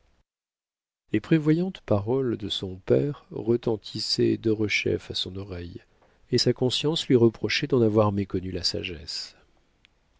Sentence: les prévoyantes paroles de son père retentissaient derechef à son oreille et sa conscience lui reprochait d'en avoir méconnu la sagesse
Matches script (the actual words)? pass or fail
pass